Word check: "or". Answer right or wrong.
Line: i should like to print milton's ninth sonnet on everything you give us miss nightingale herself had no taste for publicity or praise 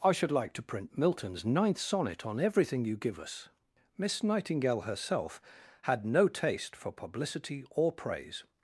right